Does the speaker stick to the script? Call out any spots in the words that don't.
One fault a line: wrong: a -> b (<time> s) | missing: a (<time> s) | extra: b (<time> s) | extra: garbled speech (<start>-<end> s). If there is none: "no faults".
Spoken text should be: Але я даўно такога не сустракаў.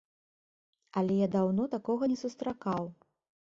no faults